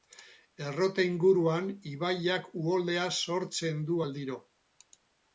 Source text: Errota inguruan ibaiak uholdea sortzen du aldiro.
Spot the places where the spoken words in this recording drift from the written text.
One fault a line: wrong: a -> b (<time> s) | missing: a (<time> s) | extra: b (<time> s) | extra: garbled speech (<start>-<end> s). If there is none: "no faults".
no faults